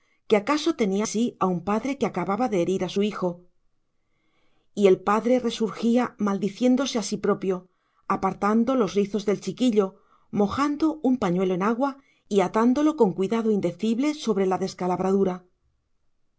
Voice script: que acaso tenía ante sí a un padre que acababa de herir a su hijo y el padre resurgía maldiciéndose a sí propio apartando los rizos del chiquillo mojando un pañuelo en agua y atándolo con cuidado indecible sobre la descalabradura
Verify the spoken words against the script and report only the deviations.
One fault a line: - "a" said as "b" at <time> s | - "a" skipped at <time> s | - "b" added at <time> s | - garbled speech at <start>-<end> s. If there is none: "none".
- "ante" skipped at 1.1 s